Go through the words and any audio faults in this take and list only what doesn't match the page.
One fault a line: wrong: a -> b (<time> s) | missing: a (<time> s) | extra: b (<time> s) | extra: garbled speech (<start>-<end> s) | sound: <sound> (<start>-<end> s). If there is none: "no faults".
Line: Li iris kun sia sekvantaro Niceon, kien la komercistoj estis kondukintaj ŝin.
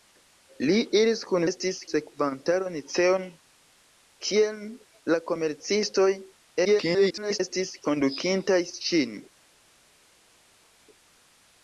wrong: sia -> estis (1.5 s)
extra: garbled speech (6.6-7.4 s)